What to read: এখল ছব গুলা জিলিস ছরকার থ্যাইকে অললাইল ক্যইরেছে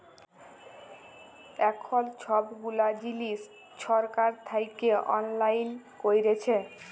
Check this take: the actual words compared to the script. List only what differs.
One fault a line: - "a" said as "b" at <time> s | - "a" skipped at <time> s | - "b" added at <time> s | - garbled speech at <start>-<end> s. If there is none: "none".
none